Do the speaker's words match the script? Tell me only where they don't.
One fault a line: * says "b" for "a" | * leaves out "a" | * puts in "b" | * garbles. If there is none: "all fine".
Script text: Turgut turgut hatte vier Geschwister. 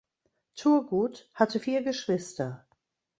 * leaves out "turgut"